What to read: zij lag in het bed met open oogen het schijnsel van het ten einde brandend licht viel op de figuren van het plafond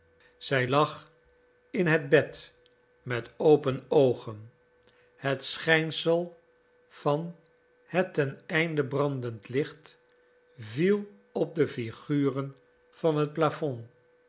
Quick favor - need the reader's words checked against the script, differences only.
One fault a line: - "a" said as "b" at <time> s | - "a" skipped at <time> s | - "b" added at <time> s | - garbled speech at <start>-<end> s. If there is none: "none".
none